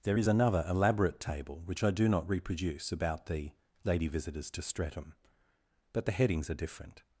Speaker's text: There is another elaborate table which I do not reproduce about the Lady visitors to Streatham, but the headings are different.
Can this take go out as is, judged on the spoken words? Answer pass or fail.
pass